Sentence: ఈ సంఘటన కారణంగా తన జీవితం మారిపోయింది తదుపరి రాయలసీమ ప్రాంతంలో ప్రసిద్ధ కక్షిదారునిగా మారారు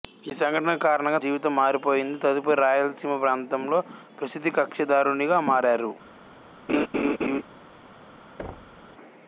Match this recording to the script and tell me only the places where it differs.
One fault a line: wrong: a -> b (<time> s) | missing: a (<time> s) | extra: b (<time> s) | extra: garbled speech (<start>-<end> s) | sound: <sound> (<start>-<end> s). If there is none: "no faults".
missing: తన (1.2 s)
sound: laugh (6.7-7.4 s)
sound: thud (8.4-8.8 s)